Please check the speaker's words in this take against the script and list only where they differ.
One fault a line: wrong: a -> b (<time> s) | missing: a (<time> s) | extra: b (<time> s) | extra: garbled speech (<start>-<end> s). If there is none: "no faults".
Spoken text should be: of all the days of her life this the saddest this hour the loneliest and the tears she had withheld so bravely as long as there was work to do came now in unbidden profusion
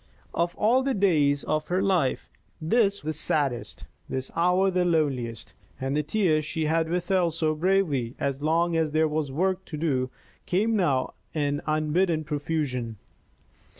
no faults